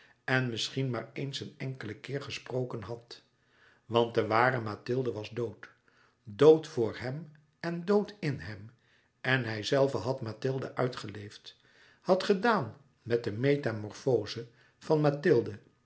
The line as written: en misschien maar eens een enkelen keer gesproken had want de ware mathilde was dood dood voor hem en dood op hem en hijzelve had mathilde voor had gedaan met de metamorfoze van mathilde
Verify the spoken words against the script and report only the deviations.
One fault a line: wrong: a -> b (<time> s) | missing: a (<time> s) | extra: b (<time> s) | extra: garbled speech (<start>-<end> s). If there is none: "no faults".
wrong: op -> in (8.2 s)
wrong: voor -> uitgeleefd (10.8 s)